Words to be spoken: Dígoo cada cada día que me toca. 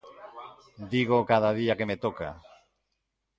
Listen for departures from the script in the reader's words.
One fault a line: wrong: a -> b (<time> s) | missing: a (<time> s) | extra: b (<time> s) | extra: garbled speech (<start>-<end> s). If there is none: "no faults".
missing: cada (1.5 s)